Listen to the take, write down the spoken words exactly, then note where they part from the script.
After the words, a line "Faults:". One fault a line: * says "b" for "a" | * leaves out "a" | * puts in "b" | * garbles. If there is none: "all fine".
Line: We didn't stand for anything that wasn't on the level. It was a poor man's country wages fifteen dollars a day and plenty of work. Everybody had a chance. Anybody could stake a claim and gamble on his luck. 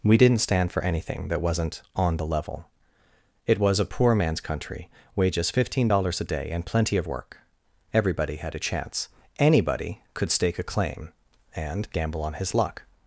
We didn't stand for anything that wasn't on the level. It was a poor man's country wages fifteen dollars a day and plenty of work. Everybody had a chance. Anybody could stake a claim and gamble on his luck.
Faults:
all fine